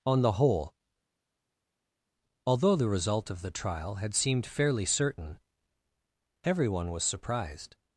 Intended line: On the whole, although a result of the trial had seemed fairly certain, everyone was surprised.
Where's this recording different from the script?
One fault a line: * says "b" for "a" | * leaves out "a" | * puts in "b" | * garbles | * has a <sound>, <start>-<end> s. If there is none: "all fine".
* says "the" for "a"